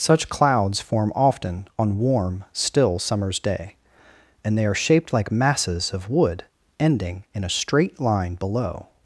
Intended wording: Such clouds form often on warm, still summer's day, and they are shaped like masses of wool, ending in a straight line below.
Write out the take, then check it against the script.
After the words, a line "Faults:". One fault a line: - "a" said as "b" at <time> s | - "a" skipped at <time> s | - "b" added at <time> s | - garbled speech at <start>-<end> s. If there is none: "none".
Such clouds form often on warm, still summer's day, and they are shaped like masses of wood, ending in a straight line below.
Faults:
- "wool" said as "wood" at 6.1 s